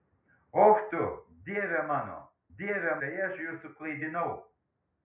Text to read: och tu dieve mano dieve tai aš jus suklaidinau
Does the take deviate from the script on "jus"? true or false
false